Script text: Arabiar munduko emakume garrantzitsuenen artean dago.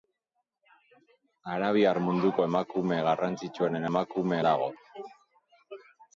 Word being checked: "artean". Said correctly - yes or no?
no